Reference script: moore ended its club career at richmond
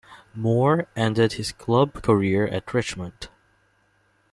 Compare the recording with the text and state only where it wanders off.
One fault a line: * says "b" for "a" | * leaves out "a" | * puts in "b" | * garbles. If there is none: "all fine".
* says "his" for "its"